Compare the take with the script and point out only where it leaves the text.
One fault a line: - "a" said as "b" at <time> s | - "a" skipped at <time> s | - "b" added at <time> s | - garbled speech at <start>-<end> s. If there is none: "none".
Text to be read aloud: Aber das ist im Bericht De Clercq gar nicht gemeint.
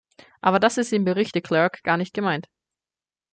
none